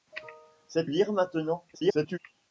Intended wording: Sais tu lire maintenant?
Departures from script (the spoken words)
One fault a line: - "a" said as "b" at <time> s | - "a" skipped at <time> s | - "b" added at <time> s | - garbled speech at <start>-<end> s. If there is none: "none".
- "tu" skipped at 0.9 s
- garbled speech at 1.7-2.2 s